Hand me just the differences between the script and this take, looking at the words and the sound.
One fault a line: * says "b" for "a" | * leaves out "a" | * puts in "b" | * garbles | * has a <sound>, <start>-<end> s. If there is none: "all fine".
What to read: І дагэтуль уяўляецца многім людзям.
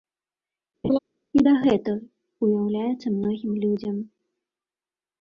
* has a laugh, 0.8-1.0 s